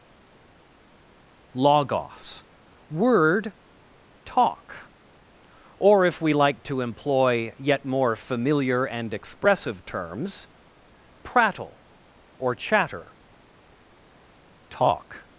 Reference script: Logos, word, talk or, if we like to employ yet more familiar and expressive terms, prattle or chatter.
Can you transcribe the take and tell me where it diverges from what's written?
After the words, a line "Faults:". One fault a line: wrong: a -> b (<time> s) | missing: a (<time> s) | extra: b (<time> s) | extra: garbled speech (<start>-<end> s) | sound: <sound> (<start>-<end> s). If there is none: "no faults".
Logos, word, talk or, if we like to employ yet more familiar and expressive terms, prattle or chatter. Talk
Faults:
extra: Talk (14.7 s)